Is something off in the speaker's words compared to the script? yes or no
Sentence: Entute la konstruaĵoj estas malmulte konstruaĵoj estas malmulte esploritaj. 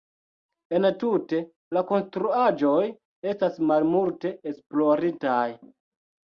yes